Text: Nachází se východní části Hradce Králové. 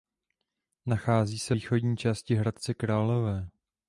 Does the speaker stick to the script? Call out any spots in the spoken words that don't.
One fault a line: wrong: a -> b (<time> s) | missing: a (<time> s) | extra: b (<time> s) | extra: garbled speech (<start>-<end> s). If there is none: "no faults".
no faults